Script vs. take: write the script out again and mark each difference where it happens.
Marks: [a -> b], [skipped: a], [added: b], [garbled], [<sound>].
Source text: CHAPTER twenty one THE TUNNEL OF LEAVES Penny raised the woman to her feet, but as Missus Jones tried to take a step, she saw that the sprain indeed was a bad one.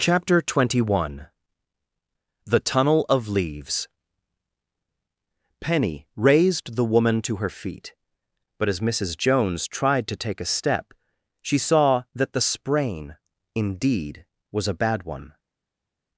CHAPTER twenty one THE TUNNEL OF LEAVES Penny raised the woman to her feet, but as Missus Jones tried to take a step, she saw that the sprain indeed was a bad one.